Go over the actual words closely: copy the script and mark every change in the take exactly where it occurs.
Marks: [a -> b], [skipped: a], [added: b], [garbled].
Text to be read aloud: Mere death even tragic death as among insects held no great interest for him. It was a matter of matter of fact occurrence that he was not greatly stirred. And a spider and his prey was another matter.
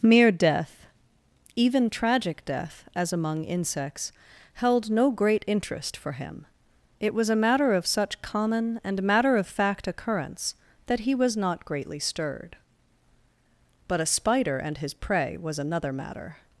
Mere death even tragic death as among insects held no great interest for him. It was a matter of [added: such common and] matter of fact occurrence that he was not greatly stirred. [And -> But] a spider and his prey was another matter.